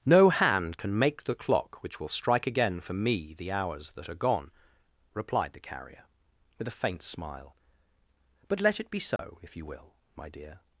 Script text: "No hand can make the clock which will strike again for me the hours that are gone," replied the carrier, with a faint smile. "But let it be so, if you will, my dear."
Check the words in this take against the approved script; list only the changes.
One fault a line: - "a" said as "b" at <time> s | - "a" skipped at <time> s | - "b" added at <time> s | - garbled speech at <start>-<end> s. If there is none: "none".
none